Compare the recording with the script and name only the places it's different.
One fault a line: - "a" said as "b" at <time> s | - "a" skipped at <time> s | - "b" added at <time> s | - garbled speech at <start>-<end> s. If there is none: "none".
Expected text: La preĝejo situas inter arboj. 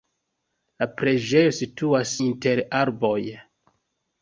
none